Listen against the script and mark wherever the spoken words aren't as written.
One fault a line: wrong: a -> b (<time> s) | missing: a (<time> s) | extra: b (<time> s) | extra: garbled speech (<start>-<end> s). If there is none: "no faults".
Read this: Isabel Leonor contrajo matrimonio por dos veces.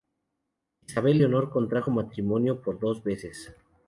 no faults